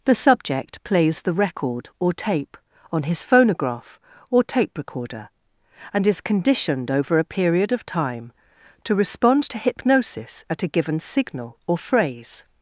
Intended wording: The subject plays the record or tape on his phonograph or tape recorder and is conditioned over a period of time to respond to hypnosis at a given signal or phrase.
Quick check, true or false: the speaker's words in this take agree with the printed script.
true